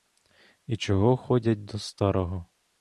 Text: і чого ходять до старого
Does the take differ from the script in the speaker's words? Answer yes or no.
no